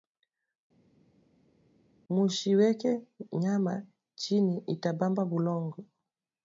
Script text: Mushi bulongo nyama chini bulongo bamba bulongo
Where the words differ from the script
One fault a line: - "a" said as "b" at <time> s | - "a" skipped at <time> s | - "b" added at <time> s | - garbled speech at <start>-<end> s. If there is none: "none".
- "bulongo" said as "weke" at 2.6 s
- "bulongo" said as "ita" at 4.7 s